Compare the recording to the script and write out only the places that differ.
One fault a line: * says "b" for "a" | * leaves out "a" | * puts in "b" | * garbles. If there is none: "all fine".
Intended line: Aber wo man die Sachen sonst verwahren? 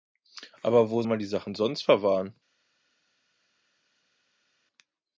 all fine